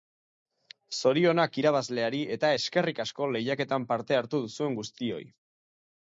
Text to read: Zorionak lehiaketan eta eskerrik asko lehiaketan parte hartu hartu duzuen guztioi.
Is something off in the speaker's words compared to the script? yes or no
yes